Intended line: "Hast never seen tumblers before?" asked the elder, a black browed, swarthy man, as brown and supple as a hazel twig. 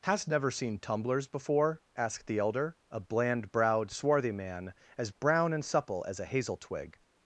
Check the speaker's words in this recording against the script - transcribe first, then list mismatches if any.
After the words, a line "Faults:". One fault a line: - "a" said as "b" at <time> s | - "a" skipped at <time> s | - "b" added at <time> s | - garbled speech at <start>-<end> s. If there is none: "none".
"Hast never seen tumblers before?" asked the elder, a bland browed, swarthy man, as brown and supple as a hazel twig.
Faults:
- "black" said as "bland" at 3.0 s